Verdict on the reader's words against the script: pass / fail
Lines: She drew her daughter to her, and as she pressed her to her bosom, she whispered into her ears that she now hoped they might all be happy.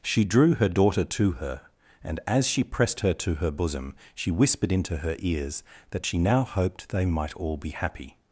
pass